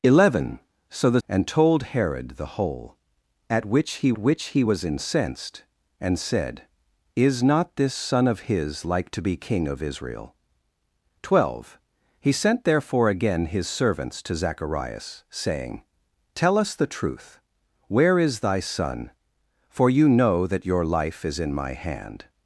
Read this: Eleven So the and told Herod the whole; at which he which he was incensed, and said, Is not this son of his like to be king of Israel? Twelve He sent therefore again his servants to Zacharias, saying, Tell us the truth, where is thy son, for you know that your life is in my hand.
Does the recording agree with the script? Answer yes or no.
yes